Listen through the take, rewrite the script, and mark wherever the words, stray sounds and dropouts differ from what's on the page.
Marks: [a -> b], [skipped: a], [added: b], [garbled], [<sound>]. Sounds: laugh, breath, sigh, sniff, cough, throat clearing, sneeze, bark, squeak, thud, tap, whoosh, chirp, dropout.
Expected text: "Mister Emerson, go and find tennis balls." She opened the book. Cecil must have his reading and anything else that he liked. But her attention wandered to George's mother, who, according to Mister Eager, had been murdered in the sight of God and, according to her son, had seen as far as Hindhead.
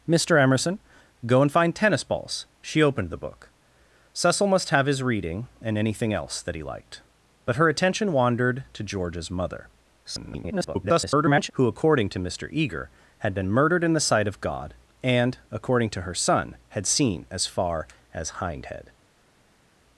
"Mister Emerson, go and find tennis balls." She opened the book. Cecil must have his reading and anything else that he liked. But her attention wandered to George's mother, [garbled] who, according to Mister Eager, had been murdered in the sight of God and, according to her son, had seen as far as Hindhead.